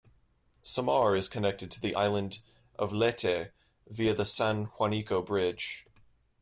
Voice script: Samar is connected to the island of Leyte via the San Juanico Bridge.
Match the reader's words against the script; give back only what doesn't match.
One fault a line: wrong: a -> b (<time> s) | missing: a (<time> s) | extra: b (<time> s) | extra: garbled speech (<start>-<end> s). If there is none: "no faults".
no faults